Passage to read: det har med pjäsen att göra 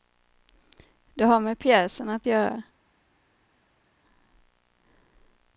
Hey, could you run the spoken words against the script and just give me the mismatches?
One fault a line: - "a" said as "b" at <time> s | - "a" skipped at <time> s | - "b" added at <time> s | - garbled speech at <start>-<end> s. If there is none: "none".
none